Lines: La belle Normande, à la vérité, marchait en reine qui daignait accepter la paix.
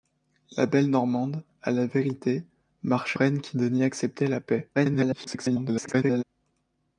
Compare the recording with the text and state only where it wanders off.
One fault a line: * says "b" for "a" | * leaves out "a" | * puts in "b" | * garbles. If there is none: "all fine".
* leaves out "en"
* garbles